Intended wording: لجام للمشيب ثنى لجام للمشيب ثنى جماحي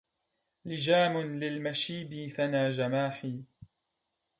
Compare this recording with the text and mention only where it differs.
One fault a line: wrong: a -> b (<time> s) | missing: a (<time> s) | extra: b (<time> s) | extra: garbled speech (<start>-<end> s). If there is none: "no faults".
missing: لجام للمشيب ثنى (2.7 s)